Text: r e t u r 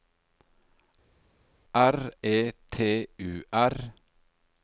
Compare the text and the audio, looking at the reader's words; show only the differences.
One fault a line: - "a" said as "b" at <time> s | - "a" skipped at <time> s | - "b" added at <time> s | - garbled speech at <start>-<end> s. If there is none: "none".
none